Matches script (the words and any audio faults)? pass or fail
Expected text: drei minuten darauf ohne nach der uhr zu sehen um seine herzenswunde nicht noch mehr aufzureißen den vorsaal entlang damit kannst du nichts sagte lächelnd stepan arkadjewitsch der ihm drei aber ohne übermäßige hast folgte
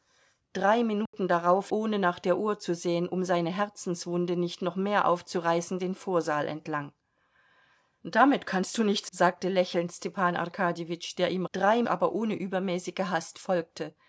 fail